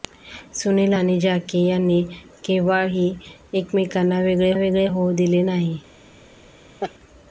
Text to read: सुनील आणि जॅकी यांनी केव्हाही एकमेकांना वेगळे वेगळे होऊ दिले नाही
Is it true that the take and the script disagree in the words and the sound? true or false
true